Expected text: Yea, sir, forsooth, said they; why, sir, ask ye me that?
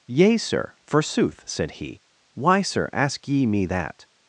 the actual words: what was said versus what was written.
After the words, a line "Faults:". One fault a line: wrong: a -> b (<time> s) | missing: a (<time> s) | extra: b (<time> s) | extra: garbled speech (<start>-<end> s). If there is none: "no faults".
Yea, sir, forsooth, said he; why, sir, ask ye me that?
Faults:
wrong: they -> he (1.7 s)